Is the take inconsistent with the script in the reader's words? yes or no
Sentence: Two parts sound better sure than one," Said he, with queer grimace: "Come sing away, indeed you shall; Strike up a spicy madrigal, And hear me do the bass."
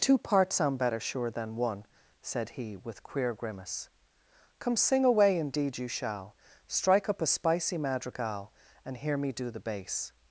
no